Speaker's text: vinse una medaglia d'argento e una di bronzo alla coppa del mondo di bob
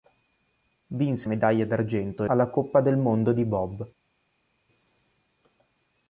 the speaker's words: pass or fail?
fail